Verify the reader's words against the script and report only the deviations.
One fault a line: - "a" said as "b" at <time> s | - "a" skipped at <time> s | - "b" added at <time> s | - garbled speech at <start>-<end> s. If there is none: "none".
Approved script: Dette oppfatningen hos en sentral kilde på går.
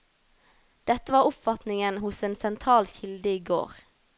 - "var" added at 1.1 s
- "på" said as "i" at 3.3 s